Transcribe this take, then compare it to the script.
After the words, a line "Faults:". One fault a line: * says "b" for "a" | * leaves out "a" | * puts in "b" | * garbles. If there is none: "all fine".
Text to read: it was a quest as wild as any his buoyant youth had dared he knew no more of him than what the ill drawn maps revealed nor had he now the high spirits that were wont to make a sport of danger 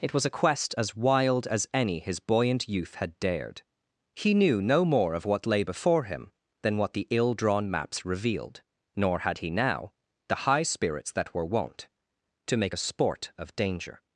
it was a quest as wild as any his buoyant youth had dared he knew no more of what lay before him than what the ill drawn maps revealed nor had he now the high spirits that were wont to make a sport of danger
Faults:
* puts in "what lay before"